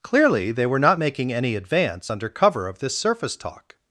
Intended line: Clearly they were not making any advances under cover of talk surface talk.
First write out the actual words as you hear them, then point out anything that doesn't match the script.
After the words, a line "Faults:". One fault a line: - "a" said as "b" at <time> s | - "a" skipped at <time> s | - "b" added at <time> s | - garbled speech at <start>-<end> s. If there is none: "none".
Clearly they were not making any advance under cover of this surface talk.
Faults:
- "advances" said as "advance" at 1.5 s
- "talk" said as "this" at 2.8 s